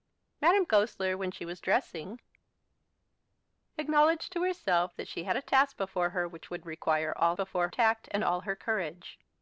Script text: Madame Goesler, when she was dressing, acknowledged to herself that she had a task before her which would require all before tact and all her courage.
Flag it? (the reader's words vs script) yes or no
no